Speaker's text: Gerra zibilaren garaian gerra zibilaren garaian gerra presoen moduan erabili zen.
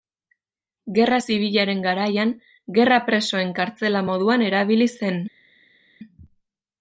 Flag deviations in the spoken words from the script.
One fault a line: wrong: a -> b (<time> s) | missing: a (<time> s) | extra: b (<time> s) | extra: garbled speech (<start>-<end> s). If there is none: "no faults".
wrong: zibilaren garaian gerra presoen -> presoen kartzela (3.1 s)